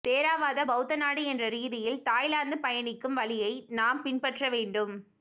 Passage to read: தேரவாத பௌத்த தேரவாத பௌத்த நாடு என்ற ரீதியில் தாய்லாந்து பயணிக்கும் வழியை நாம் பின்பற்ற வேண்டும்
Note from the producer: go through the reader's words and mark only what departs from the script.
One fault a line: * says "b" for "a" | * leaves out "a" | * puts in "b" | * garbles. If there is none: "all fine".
* leaves out "தேரவாத பௌத்த"